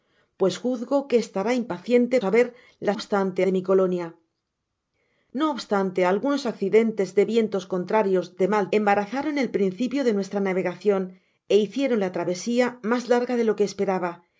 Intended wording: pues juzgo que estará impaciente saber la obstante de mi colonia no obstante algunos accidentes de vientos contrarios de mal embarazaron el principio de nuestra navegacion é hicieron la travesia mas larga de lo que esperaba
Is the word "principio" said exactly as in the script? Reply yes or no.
yes